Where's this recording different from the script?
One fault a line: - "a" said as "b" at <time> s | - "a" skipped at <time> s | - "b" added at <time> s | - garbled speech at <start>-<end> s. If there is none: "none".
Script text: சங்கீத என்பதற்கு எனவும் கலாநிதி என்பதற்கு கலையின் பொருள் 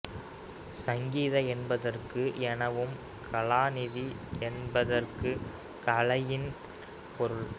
none